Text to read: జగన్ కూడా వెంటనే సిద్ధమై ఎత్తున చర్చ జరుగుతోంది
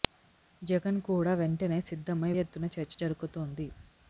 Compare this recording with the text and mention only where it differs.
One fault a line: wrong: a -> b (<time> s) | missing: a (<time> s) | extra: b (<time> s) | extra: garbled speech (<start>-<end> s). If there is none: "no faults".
no faults